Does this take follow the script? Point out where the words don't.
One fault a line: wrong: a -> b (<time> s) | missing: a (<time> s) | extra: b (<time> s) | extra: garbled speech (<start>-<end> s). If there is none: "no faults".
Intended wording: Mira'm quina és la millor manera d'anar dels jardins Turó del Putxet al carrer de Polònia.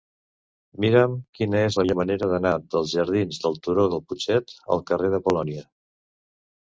extra: del (3.5 s)